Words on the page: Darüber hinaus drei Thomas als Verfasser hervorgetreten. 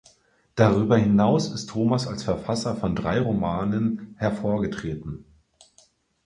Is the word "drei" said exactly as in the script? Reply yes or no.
no